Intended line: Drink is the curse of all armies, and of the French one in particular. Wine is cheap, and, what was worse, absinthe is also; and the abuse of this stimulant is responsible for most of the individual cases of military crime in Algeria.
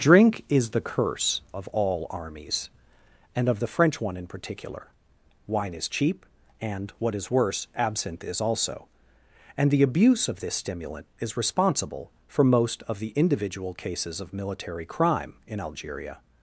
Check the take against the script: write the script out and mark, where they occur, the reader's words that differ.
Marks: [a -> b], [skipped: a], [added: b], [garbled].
Drink is the curse of all armies, and of the French one in particular. Wine is cheap, and, what [was -> is] worse, absinthe is also; and the abuse of this stimulant is responsible for most of the individual cases of military crime in Algeria.